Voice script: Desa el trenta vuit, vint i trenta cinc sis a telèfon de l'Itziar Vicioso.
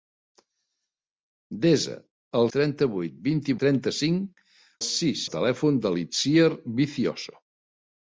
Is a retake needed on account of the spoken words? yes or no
no